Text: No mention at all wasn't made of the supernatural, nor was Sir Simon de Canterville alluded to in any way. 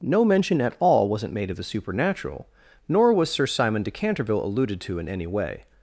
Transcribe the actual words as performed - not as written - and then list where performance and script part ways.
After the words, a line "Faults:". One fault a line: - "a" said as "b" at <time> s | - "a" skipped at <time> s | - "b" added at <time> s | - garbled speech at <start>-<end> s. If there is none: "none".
No mention at all wasn't made of the supernatural, nor was Sir Simon de Canterville alluded to in any way.
Faults:
none